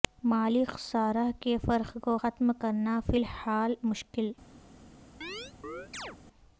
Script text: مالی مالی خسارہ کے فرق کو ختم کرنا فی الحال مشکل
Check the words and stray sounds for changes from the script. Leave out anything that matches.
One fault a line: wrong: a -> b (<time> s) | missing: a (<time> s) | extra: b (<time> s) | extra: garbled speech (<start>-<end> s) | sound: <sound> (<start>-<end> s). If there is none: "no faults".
missing: مالی (0.6 s)
sound: chirp (5.2-6.2 s)